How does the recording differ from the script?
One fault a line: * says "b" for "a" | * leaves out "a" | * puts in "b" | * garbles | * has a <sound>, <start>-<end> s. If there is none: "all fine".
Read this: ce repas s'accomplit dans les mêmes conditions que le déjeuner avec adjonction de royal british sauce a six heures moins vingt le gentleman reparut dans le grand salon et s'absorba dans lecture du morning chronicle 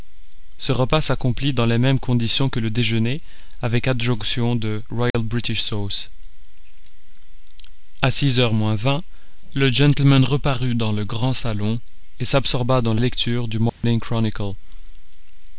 * has a dropout, 5.1-5.1 s
* has a dropout, 13.7-13.8 s